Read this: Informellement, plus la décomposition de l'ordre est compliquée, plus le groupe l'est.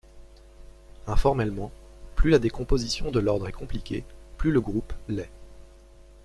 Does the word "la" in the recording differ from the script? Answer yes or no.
no